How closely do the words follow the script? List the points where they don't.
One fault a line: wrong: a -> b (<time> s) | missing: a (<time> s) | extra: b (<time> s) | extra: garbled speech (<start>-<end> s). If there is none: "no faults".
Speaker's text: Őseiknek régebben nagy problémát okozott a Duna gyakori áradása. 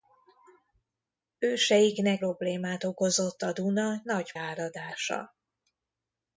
missing: régebben nagy (2.2 s)
wrong: gyakori -> nagy (4.0 s)